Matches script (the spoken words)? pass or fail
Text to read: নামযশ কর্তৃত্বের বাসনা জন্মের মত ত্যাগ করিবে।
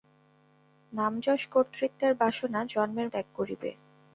fail